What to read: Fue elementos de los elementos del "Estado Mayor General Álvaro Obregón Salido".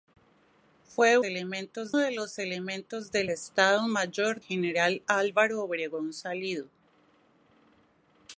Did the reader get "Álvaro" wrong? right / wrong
right